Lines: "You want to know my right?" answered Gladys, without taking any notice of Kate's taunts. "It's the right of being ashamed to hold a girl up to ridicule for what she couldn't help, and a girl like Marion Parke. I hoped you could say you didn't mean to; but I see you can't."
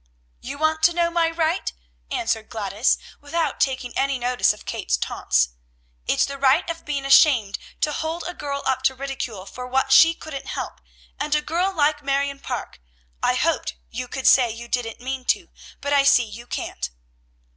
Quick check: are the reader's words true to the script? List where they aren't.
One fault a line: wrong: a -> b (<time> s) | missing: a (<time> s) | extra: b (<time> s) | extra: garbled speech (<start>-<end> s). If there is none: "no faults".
no faults